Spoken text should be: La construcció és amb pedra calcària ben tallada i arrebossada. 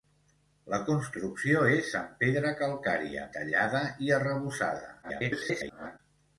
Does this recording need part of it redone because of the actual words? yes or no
yes